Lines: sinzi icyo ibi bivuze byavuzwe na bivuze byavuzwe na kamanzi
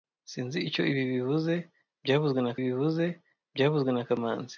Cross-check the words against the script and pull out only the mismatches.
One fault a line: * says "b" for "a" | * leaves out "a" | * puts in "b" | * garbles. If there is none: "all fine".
all fine